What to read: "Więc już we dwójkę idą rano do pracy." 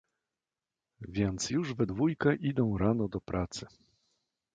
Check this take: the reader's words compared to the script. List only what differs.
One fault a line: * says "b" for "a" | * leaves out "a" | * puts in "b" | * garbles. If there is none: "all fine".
all fine